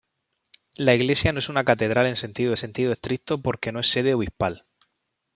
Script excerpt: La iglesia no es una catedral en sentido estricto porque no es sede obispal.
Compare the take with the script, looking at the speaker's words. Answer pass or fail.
fail